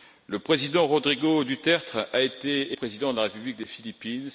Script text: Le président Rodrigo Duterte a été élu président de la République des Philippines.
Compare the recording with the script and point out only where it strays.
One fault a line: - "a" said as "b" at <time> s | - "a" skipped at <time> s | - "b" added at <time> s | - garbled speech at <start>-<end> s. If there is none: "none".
- "élu" skipped at 2.8 s